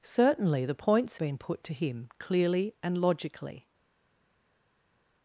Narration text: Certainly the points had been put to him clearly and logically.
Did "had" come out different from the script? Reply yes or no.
yes